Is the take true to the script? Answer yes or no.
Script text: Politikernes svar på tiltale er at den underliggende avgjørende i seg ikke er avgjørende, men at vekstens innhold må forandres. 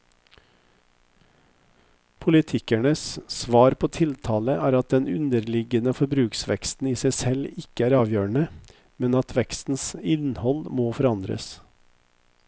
no